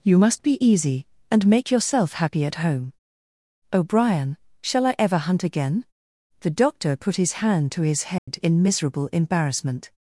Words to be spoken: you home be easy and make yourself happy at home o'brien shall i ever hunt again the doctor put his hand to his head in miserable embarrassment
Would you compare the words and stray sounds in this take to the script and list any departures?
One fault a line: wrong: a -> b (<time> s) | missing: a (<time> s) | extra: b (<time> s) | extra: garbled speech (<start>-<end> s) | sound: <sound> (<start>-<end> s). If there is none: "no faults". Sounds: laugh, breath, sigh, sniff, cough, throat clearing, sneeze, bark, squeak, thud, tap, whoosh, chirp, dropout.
wrong: home -> must (0.2 s)
sound: dropout (8.2-8.3 s)